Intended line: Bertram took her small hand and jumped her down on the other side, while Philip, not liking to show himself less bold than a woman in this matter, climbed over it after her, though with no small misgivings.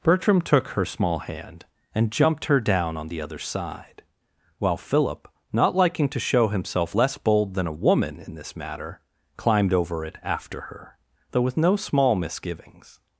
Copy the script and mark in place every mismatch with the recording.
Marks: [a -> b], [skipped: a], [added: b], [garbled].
Bertram took her small hand and jumped her down on the other side, while Philip, not liking to show himself less bold than a woman in this matter, climbed over it after her, though with no small misgivings.